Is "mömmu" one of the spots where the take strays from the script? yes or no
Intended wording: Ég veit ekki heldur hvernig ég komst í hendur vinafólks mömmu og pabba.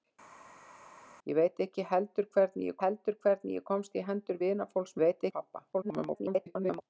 yes